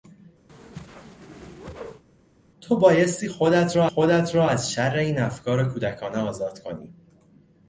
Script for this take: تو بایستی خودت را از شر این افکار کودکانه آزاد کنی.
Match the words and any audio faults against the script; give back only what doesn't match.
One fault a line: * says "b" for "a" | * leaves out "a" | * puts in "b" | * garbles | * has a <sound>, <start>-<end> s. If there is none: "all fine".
* has a whoosh, 0.5-2.0 s
* puts in "خودت را"